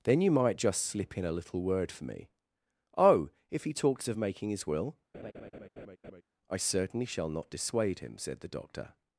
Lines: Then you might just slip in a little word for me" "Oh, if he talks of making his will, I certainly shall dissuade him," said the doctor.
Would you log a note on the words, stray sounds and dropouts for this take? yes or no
yes